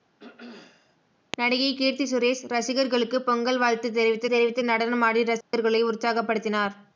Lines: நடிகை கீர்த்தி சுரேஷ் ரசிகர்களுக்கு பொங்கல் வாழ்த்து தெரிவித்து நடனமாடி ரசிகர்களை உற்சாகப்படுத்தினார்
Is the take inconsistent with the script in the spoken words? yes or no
yes